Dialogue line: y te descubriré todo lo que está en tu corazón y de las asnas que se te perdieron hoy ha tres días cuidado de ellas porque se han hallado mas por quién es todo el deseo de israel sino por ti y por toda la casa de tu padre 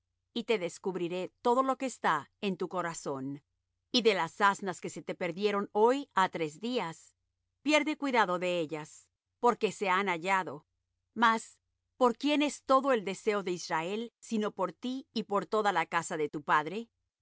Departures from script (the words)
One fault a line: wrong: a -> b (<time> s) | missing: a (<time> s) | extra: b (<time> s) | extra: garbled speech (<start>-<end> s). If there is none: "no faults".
extra: pierde (7.6 s)